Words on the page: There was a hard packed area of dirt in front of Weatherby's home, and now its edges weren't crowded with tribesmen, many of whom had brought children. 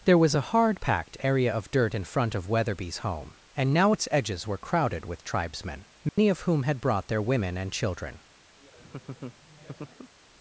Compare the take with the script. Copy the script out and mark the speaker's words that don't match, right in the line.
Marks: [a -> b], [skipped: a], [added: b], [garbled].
There was a hard packed area of dirt in front of Weatherby's home, and now its edges [weren't -> were] crowded with tribesmen, many of whom had brought [added: their women and] children.